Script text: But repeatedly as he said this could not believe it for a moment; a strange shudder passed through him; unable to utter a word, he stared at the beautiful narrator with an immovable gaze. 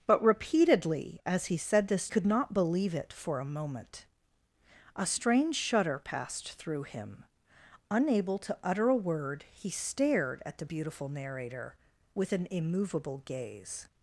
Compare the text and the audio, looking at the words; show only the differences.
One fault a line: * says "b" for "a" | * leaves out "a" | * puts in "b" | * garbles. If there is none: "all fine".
all fine